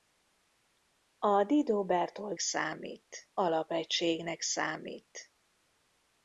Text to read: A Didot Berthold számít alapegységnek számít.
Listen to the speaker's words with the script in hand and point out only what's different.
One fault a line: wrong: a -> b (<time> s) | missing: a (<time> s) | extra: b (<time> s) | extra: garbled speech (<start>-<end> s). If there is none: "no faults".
no faults